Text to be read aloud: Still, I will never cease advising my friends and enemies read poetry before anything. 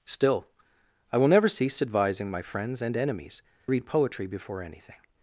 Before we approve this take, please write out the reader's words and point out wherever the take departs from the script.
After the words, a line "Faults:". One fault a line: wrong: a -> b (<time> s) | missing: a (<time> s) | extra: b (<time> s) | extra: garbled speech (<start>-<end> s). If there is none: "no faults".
Still, I will never cease advising my friends and enemies read poetry before anything.
Faults:
no faults